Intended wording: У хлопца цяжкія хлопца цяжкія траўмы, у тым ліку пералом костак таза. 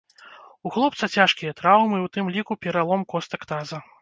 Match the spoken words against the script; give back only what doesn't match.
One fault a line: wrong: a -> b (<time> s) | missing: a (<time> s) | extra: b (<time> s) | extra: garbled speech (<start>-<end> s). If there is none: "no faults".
missing: хлопца цяжкія (1.6 s)